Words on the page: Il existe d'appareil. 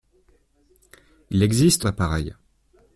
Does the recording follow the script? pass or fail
pass